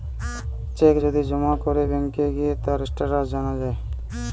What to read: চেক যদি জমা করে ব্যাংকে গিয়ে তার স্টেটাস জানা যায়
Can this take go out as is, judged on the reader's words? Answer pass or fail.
pass